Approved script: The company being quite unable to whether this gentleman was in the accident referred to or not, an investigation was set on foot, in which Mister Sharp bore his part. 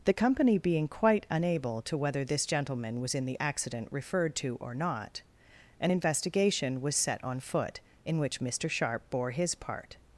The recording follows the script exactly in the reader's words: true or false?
true